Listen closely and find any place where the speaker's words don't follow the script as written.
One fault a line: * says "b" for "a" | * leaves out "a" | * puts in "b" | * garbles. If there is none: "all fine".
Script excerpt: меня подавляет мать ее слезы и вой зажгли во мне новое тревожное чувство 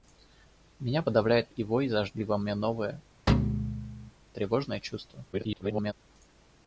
* leaves out "мать ее слезы"
* garbles